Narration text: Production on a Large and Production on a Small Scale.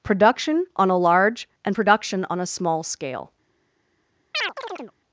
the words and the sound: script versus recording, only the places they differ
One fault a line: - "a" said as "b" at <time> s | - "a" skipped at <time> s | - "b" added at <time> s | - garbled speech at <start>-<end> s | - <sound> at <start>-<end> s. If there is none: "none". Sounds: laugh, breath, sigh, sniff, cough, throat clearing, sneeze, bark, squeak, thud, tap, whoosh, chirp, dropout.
- chirp at 4.3-4.9 s